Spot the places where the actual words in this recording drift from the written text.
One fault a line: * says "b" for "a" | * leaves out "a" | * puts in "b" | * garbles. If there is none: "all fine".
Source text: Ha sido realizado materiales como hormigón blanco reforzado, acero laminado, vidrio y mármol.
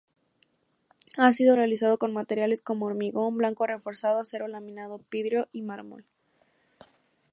* puts in "con"